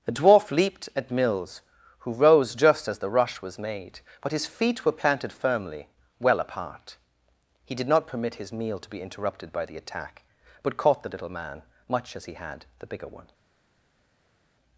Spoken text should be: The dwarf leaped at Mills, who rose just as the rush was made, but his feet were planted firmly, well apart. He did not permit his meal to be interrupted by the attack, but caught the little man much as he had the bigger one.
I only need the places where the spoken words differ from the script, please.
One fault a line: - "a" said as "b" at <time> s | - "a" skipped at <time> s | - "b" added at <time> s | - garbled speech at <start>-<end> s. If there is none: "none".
none